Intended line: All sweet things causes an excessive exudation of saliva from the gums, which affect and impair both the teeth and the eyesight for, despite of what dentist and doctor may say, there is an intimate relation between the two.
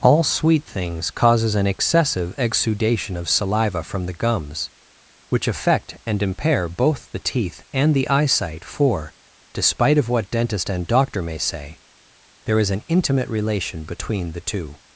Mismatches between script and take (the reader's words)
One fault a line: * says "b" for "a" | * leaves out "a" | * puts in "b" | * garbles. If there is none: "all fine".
all fine